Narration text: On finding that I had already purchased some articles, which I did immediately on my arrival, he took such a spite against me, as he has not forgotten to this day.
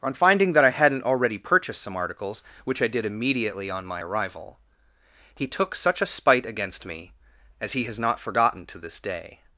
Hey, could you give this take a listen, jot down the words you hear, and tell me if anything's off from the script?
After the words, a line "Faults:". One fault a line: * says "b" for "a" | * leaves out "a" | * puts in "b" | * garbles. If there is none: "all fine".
On finding that I hadn't already purchased some articles, which I did immediately on my arrival, he took such a spite against me, as he has not forgotten to this day.
Faults:
* says "hadn't" for "had"